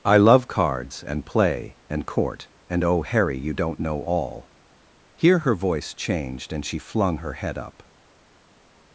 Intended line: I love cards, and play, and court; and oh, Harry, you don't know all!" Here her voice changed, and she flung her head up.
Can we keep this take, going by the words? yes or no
yes